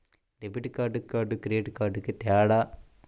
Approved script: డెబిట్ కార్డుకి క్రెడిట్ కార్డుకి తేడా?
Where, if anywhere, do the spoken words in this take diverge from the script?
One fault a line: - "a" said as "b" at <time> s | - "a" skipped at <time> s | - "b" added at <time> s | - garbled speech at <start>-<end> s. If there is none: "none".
- "కార్డుకి" added at 1.0 s